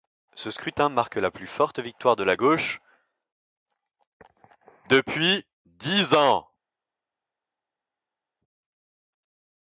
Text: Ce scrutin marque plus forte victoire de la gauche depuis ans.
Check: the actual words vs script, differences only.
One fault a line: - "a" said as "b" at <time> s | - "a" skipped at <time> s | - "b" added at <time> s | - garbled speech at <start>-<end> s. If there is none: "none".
- "la" added at 1.2 s
- "dix" added at 5.6 s